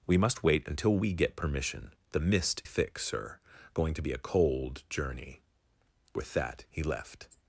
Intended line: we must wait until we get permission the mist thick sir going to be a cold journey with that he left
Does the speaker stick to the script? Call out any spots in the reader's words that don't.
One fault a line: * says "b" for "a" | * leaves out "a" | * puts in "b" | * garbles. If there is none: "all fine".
all fine